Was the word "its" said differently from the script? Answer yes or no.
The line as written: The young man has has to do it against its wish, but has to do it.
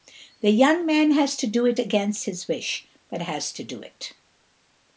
yes